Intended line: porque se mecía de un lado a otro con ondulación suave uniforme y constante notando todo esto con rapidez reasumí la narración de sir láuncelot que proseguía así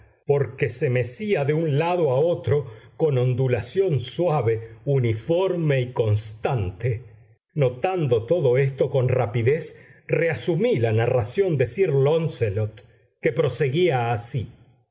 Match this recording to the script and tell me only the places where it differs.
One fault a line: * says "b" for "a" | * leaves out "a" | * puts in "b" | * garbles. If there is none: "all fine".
all fine